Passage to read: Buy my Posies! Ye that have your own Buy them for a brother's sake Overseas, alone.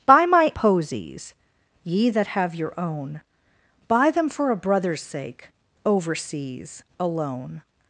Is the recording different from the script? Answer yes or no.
no